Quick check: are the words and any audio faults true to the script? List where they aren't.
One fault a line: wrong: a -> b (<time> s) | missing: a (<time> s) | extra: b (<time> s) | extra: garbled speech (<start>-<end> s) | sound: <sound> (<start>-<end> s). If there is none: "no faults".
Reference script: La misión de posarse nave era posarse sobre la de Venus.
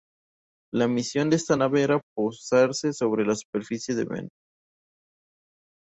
wrong: posarse -> esta (1.4 s)
extra: superficie (3.4 s)